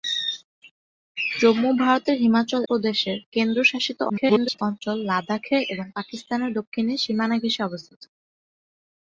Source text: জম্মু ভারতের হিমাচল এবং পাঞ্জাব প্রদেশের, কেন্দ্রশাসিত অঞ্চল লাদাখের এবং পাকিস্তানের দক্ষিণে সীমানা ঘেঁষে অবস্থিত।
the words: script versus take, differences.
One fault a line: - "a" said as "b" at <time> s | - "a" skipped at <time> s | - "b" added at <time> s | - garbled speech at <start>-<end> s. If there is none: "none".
- "এবং পাঞ্জাব" skipped at 2.6 s
- garbled speech at 4.1-4.6 s